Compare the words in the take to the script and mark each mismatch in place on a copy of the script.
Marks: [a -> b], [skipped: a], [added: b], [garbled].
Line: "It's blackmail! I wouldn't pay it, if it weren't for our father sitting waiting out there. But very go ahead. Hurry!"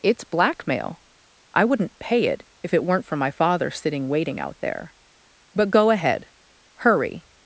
"It's blackmail! I wouldn't pay it, if it weren't for [our -> my] father sitting waiting out there. But [skipped: very] go ahead. Hurry!"